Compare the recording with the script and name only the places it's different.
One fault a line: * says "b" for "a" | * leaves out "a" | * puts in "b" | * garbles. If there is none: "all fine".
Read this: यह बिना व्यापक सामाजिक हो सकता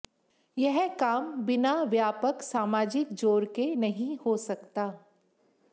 * puts in "काम"
* puts in "जोर के नहीं"